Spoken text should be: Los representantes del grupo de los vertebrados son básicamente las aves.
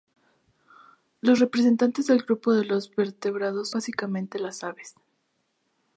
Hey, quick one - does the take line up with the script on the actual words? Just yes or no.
no